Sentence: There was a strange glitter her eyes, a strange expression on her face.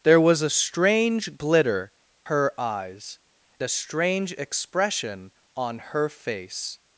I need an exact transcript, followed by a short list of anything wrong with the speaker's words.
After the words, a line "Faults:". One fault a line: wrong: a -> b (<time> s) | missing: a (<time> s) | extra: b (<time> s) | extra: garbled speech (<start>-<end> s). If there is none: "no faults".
There was a strange glitter her eyes, a strange expression on her face.
Faults:
no faults